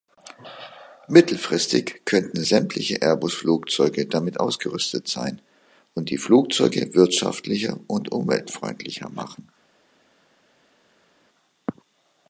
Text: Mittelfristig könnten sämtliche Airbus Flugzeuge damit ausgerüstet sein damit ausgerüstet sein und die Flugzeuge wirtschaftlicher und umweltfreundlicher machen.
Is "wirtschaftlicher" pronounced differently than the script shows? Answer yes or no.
no